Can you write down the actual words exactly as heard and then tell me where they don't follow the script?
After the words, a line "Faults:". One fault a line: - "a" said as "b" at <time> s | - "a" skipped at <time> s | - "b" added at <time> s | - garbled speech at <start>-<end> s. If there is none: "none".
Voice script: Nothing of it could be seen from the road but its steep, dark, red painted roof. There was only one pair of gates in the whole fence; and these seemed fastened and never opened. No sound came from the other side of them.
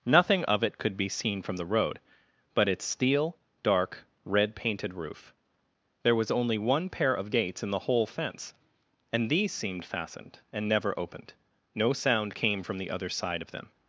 Nothing of it could be seen from the road but its steel, dark, red painted roof. There was only one pair of gates in the whole fence; and these seemed fastened and never opened. No sound came from the other side of them.
Faults:
- "steep" said as "steel" at 2.9 s